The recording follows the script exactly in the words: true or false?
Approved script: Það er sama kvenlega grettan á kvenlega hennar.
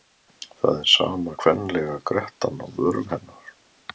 false